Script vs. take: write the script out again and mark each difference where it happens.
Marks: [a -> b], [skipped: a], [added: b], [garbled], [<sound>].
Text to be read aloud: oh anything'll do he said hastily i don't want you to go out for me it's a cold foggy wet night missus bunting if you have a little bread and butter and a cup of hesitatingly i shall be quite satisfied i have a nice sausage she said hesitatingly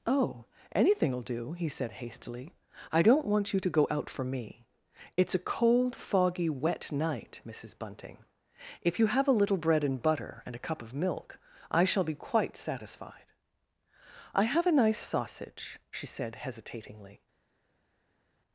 oh anything'll do he said hastily i don't want you to go out for me it's a cold foggy wet night missus bunting if you have a little bread and butter and a cup of [hesitatingly -> milk] i shall be quite satisfied i have a nice sausage she said hesitatingly